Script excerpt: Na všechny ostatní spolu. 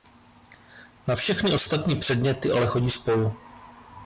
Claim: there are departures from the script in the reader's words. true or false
true